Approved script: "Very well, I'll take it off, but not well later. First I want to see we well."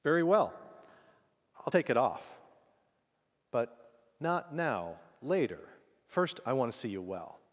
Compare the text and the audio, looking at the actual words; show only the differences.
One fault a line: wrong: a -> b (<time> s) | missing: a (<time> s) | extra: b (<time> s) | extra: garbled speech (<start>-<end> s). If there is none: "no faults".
wrong: well -> now (4.5 s)
wrong: we -> you (6.9 s)